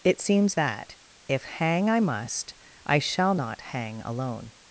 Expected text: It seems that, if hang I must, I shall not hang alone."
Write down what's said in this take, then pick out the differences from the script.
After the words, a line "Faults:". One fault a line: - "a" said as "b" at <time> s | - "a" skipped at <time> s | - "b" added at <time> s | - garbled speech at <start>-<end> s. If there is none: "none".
It seems that, if hang I must, I shall not hang alone."
Faults:
none